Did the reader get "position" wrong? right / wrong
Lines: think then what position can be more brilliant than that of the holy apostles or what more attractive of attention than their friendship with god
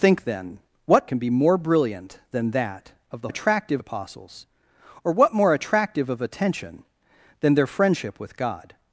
wrong